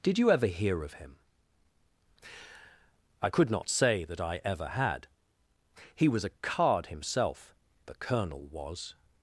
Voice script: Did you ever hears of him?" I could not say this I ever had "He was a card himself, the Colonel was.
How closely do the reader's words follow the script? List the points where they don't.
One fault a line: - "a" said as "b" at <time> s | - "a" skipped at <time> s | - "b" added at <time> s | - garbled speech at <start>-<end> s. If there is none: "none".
- "hears" said as "hear" at 0.5 s
- "this" said as "that" at 4.0 s